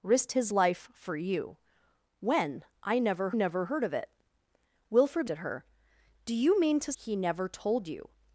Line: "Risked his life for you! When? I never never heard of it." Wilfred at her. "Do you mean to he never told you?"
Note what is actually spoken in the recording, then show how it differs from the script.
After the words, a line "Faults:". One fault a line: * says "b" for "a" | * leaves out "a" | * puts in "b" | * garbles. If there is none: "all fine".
"Risked his life for you! When? I never never heard of it." Wilfred at her. "Do you mean to he never told you?"
Faults:
all fine